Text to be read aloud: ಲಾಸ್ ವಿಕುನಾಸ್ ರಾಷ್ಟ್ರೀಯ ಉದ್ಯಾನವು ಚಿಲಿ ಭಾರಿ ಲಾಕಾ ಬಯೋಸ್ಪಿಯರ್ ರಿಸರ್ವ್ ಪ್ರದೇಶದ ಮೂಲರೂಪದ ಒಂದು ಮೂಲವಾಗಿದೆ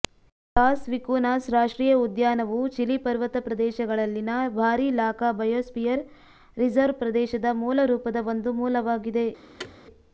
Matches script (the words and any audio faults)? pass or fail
fail